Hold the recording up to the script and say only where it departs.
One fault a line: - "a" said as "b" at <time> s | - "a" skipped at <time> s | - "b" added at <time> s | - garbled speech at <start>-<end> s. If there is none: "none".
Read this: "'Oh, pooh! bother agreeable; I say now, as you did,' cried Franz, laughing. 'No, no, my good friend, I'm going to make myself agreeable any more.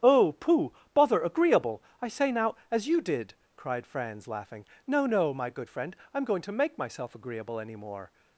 none